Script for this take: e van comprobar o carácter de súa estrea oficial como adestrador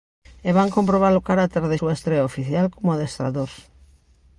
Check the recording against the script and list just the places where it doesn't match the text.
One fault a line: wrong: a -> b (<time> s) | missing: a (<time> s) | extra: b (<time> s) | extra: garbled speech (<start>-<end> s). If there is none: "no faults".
no faults